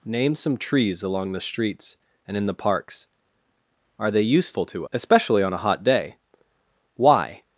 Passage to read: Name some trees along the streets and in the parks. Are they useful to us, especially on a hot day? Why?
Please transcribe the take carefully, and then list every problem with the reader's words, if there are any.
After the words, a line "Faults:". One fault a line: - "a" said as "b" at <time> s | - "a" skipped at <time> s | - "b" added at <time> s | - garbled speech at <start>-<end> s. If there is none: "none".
Name some trees along the streets and in the parks. Are they useful to especially on a hot day? Why?
Faults:
- "us" skipped at 4.9 s